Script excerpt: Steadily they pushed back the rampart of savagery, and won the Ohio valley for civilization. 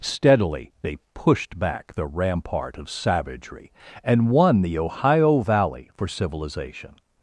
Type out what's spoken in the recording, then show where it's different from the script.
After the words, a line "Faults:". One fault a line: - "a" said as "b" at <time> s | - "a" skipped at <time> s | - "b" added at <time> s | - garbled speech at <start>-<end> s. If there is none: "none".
Steadily they pushed back the rampart of savagery, and won the Ohio valley for civilization.
Faults:
none